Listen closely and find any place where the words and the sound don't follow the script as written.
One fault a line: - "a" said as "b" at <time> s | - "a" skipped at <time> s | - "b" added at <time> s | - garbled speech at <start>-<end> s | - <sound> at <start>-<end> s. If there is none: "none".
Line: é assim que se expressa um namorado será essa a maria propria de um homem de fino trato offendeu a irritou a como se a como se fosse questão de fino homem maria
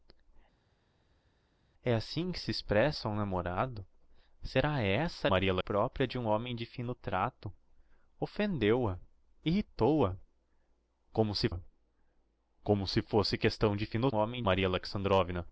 none